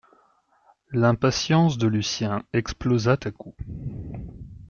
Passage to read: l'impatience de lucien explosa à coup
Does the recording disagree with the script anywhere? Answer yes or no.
no